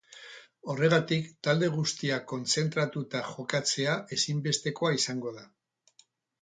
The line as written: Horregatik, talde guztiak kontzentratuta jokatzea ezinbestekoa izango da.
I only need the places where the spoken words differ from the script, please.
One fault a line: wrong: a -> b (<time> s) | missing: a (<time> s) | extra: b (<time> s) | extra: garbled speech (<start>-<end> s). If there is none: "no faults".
no faults